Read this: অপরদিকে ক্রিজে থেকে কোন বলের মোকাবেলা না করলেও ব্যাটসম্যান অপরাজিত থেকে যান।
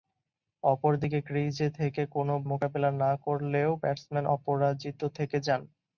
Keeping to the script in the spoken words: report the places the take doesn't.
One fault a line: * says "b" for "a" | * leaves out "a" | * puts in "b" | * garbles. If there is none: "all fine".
* leaves out "বলের"